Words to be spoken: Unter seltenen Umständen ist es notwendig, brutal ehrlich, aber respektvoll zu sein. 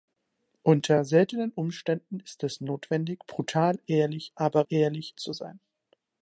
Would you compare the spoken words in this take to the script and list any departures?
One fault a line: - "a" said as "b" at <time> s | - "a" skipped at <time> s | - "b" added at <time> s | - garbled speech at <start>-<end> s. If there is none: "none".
- "respektvoll" said as "ehrlich" at 4.7 s